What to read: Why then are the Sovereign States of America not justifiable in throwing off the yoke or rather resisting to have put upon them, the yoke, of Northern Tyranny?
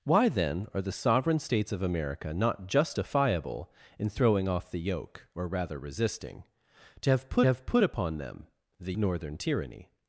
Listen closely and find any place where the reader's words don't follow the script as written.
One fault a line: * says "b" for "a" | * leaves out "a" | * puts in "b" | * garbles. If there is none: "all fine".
* puts in "have put"
* leaves out "yoke of"